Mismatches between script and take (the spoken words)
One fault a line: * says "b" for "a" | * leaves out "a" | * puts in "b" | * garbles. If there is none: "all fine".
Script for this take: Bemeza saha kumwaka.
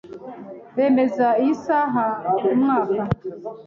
* puts in "iyi"